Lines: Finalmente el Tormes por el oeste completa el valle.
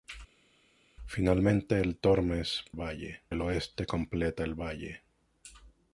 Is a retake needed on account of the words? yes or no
yes